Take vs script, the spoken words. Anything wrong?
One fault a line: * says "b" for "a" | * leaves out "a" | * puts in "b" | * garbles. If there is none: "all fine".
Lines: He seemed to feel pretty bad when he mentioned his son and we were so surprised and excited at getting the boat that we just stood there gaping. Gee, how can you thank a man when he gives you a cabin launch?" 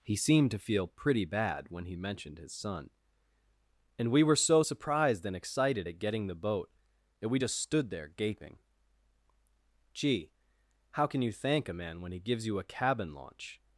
all fine